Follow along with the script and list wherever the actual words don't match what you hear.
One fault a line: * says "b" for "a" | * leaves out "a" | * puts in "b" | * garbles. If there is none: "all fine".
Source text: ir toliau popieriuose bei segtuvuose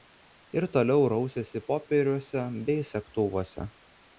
* puts in "rausėsi"